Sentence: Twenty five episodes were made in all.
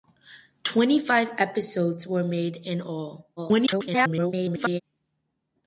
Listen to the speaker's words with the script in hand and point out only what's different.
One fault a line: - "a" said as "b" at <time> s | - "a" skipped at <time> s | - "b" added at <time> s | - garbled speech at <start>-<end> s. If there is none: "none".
- garbled speech at 3.4-4.8 s